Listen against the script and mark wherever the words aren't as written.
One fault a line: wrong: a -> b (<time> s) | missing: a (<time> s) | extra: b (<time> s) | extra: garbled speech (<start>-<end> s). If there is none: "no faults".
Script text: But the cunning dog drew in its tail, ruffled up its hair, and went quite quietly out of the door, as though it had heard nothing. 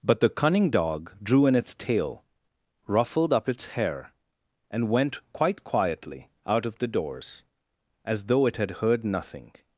wrong: door -> doors (6.9 s)